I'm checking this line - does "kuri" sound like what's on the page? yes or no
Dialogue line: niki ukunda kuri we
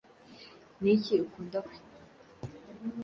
no